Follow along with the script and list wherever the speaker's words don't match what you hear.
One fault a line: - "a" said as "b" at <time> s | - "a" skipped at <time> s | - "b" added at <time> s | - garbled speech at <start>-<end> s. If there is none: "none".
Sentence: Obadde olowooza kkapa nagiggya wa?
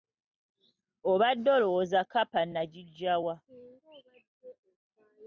none